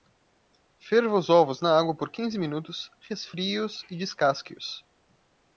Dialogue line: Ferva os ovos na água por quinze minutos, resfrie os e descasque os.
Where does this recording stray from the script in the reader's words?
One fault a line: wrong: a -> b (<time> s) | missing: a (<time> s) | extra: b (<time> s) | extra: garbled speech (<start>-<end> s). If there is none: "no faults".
no faults